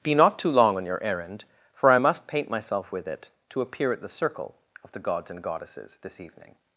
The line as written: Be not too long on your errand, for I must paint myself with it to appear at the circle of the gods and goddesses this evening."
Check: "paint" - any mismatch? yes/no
no